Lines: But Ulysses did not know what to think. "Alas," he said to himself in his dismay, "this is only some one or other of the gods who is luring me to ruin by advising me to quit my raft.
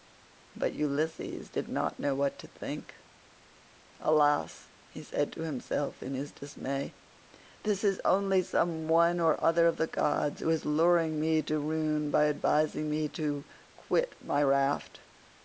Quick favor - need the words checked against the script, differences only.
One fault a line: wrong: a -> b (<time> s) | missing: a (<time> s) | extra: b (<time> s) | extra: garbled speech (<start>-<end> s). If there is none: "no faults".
no faults